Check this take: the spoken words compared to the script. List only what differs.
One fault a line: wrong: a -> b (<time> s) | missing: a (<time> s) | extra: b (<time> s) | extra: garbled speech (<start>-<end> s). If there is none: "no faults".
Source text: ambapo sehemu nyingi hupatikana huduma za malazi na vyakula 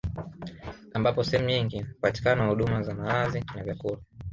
no faults